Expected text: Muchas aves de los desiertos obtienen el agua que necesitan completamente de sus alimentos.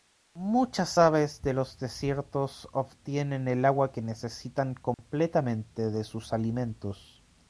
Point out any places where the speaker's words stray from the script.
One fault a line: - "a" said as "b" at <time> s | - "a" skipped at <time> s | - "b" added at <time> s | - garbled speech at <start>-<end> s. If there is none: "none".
none